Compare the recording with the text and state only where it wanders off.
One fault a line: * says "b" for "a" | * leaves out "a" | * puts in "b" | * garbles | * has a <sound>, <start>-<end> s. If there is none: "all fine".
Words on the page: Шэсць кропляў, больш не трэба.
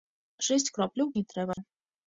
* leaves out "больш"
* has a dropout, 1.5-1.6 s